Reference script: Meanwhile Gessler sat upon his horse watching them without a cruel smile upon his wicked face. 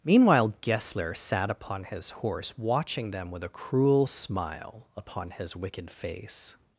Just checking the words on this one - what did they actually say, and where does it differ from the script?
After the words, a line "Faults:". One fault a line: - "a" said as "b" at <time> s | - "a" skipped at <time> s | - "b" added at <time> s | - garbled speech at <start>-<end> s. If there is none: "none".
Meanwhile Gessler sat upon his horse watching them with a cruel smile upon his wicked face.
Faults:
- "without" said as "with" at 3.3 s